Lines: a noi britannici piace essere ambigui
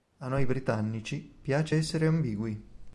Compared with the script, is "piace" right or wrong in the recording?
right